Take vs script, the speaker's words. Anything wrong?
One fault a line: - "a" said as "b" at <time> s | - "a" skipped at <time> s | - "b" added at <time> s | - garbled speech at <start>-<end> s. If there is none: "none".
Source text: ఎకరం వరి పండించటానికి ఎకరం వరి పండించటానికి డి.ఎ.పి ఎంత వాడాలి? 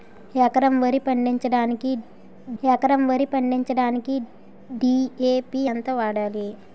none